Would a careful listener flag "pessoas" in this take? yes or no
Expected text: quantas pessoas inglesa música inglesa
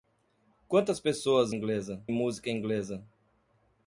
no